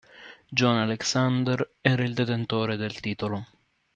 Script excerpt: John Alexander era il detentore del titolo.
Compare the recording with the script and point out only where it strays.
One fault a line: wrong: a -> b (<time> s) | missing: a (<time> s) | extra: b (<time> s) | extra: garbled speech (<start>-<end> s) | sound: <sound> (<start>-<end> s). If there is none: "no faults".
no faults